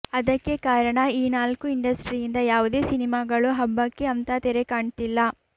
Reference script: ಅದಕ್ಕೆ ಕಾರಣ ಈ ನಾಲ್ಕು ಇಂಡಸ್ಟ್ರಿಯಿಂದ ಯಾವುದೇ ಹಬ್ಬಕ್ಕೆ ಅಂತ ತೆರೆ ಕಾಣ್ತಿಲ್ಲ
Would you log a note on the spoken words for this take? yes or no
yes